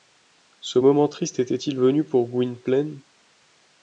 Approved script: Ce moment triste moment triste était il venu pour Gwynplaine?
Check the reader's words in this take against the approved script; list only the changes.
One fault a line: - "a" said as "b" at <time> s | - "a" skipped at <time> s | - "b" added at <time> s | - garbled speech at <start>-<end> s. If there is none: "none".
- "moment triste" skipped at 1.4 s